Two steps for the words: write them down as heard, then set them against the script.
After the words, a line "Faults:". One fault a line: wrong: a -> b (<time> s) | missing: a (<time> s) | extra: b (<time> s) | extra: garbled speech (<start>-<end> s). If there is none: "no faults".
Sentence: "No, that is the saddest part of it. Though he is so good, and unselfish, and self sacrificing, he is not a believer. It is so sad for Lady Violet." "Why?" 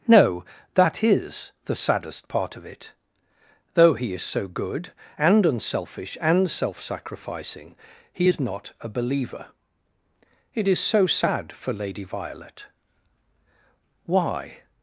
"No, that is the saddest part of it. Though he is so good, and unselfish, and self sacrificing, he is not a believer. It is so sad for Lady Violet." "Why?"
Faults:
no faults